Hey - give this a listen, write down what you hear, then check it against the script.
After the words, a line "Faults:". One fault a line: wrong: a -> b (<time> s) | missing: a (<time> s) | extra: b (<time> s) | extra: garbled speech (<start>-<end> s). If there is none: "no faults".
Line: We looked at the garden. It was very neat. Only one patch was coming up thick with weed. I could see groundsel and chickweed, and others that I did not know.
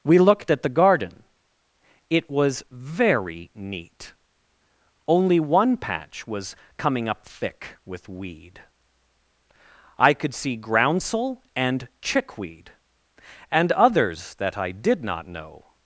We looked at the garden. It was very neat. Only one patch was coming up thick with weed. I could see groundsel and chickweed, and others that I did not know.
Faults:
no faults